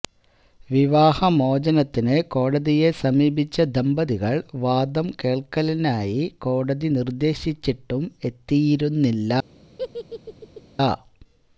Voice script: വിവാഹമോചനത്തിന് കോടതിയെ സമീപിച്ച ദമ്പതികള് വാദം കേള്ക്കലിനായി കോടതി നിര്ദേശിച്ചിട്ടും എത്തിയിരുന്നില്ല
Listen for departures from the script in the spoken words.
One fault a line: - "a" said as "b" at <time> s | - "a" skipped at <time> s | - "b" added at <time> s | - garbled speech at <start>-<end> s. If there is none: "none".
none